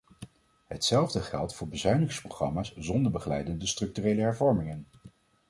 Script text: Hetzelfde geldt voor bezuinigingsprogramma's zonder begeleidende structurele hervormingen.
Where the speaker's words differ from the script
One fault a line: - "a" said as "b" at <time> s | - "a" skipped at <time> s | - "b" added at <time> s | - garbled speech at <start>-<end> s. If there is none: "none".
none